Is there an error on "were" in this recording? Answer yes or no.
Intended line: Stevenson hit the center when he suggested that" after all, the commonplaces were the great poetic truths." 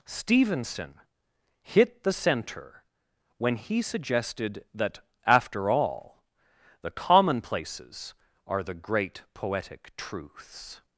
yes